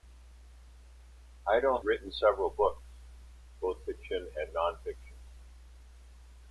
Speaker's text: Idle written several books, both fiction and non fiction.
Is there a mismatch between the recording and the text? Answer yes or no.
no